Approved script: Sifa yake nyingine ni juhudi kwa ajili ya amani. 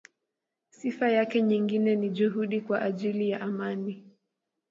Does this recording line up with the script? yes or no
yes